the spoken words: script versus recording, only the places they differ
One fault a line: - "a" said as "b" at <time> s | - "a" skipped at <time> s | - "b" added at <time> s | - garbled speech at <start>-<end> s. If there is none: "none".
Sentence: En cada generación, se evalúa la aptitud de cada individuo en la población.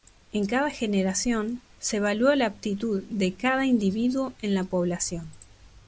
none